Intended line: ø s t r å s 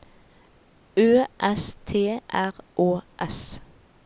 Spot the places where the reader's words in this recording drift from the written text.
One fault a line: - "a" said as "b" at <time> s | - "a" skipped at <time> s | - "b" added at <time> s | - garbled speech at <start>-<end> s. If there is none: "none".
none